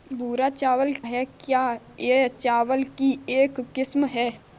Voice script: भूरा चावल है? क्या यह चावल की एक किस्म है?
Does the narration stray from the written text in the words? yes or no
no